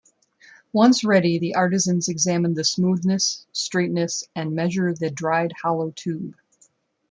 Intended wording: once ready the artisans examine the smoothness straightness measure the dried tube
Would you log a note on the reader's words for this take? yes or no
yes